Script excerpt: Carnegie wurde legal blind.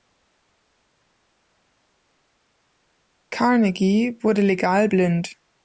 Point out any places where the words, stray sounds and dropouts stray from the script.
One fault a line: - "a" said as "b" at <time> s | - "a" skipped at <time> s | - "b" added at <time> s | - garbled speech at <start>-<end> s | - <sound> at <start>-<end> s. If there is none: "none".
none